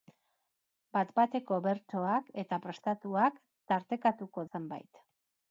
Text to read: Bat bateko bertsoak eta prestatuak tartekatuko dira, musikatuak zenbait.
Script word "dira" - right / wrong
wrong